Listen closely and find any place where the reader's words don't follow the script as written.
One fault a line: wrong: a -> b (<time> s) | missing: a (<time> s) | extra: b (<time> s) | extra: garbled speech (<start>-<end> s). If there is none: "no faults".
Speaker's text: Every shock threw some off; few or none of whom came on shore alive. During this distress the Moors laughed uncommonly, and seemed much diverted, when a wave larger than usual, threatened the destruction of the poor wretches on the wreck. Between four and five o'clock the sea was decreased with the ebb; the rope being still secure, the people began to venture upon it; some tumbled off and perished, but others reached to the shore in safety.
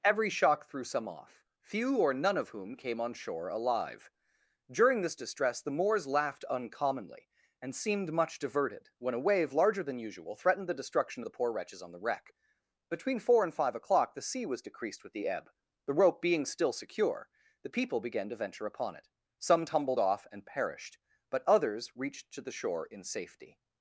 no faults